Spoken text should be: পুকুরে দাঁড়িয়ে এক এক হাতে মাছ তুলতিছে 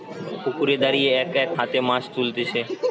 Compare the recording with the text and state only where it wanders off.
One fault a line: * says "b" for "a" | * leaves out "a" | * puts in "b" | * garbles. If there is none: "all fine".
all fine